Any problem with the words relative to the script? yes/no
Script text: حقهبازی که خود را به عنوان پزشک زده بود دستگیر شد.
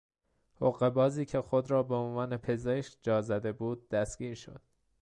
yes